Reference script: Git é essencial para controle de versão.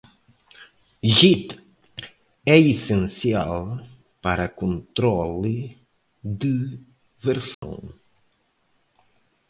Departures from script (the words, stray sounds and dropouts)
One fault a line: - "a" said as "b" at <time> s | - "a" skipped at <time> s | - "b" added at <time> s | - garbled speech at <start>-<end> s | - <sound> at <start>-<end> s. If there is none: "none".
- dropout at 7.5-7.6 s